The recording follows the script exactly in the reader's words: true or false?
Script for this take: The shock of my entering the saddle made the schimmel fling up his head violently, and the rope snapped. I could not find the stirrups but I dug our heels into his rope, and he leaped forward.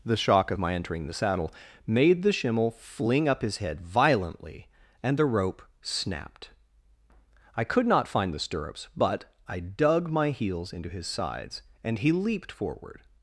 false